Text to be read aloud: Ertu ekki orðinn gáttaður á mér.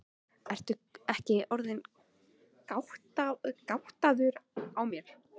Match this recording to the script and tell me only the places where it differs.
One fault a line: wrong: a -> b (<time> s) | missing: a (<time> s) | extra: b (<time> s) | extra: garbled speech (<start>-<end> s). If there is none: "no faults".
no faults